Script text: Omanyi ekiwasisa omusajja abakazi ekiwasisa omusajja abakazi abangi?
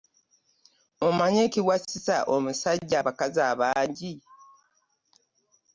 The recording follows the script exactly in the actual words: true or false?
false